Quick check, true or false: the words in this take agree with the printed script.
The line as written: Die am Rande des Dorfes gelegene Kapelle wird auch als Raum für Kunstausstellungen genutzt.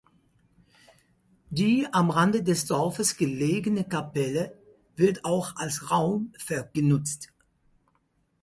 false